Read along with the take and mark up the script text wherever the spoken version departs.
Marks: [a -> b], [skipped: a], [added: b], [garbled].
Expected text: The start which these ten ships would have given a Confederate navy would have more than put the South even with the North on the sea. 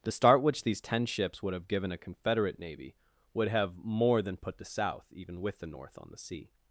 The start which these ten ships would have given a Confederate navy would have more than put the South even with the North on the sea.